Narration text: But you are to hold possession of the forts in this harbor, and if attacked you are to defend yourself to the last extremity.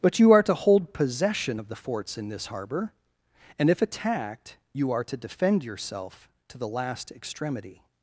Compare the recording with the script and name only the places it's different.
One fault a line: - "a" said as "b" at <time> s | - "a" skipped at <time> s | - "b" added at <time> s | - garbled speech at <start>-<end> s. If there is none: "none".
none